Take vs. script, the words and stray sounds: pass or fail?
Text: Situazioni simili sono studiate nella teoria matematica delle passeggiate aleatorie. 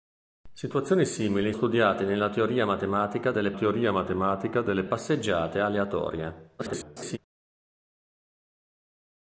fail